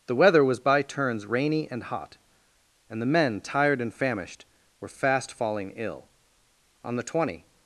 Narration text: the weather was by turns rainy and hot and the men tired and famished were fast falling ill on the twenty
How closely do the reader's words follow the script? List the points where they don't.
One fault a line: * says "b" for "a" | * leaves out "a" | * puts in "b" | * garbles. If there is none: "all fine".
all fine